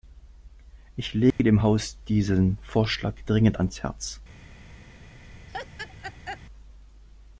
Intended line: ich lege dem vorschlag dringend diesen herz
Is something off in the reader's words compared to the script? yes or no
yes